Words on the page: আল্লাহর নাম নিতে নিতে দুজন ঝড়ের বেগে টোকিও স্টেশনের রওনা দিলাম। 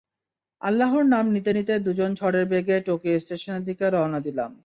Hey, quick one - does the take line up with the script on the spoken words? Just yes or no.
no